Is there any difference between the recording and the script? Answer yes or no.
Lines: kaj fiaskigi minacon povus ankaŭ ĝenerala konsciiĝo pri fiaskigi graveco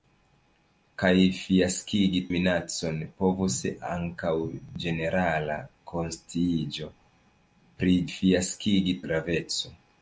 no